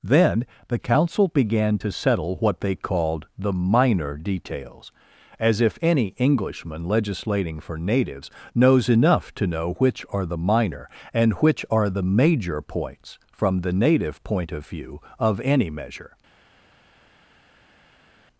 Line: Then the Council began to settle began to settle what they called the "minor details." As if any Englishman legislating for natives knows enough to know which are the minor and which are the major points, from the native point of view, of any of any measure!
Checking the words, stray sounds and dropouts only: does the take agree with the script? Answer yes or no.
no